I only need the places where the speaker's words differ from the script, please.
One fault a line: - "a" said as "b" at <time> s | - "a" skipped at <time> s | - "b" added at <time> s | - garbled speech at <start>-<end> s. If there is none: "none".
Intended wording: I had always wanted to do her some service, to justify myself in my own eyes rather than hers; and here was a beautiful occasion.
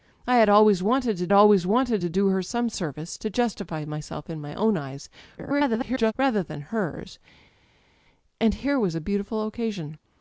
- "always wanted to" added at 1.3 s
- garbled speech at 5.4-6.1 s